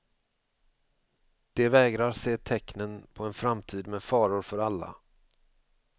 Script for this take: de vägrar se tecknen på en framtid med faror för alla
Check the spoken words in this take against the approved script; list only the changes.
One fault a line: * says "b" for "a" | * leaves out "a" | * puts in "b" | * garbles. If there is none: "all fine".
all fine